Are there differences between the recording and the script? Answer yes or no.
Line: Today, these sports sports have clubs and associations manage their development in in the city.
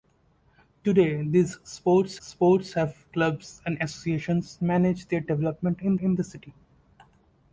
no